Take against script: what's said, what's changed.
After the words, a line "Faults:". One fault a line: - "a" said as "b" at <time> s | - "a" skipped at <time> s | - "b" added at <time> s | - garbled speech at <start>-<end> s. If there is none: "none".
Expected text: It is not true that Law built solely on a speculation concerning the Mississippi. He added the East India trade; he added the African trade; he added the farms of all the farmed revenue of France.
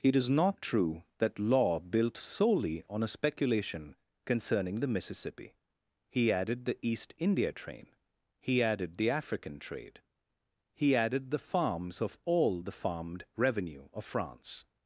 It is not true that Law built solely on a speculation concerning the Mississippi. He added the East India train; he added the African trade; he added the farms of all the farmed revenue of France.
Faults:
- "trade" said as "train" at 7.5 s